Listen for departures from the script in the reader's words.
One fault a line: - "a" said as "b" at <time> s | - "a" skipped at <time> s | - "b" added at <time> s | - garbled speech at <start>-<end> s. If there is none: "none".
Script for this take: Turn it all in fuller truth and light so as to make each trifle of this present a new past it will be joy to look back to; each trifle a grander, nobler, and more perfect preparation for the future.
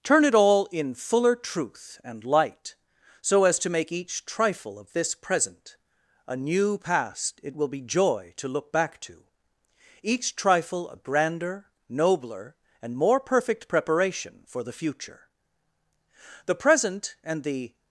- "The present and the" added at 16.4 s